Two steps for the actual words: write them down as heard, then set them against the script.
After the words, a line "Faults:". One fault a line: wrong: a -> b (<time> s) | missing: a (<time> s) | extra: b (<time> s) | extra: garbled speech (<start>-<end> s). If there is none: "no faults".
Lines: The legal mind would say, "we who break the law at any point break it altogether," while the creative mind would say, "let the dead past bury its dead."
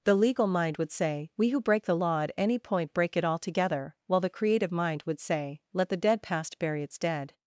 The legal mind would say, "we who break the law at any point break it altogether," while the creative mind would say, "let the dead past bury its dead."
Faults:
no faults